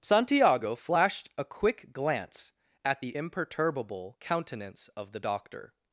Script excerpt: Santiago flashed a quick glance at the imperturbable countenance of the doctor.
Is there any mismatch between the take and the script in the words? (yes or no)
no